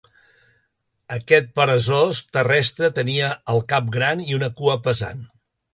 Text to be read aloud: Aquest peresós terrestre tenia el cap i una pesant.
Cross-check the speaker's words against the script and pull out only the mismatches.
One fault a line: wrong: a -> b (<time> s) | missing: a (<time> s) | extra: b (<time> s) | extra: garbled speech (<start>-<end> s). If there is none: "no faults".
extra: gran (4.0 s)
extra: cua (4.6 s)